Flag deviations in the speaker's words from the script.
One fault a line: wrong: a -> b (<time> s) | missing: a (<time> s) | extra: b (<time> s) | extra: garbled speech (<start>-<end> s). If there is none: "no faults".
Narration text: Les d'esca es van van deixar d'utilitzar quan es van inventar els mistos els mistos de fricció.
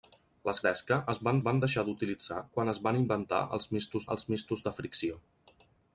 no faults